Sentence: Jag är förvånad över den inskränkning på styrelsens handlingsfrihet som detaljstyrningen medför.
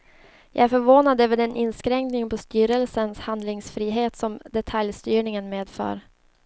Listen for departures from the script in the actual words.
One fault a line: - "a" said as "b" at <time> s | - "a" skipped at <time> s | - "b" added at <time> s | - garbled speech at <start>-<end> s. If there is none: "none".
none